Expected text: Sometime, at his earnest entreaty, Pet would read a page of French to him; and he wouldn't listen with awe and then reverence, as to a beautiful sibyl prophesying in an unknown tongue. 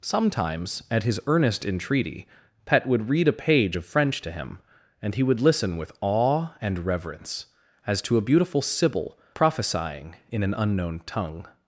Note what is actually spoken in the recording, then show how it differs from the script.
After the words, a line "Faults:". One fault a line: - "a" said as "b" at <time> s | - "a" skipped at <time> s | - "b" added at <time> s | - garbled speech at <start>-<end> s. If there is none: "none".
Sometimes, at his earnest entreaty, Pet would read a page of French to him; and he would listen with awe and reverence, as to a beautiful sibyl prophesying in an unknown tongue.
Faults:
- "Sometime" said as "Sometimes" at 0.0 s
- "wouldn't" said as "would" at 5.2 s
- "then" skipped at 6.9 s